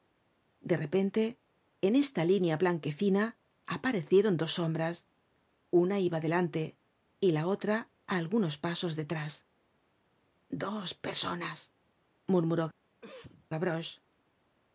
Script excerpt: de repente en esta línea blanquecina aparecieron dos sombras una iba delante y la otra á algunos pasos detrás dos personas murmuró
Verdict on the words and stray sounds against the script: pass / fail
fail